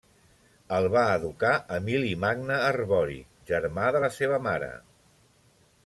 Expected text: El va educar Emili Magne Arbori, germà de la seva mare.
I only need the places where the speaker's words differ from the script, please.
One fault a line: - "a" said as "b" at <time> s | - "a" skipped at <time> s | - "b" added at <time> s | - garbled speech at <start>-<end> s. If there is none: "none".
none